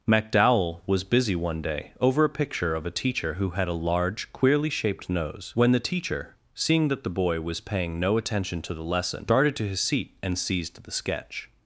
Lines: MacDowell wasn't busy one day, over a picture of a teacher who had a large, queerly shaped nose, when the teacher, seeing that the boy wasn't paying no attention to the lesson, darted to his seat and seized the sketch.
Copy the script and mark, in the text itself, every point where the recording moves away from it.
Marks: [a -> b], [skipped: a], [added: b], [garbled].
MacDowell [wasn't -> was] busy one day, over a picture of a teacher who had a large, queerly shaped nose, when the teacher, seeing that the boy [wasn't -> was] paying no attention to the lesson, darted to his seat and seized the sketch.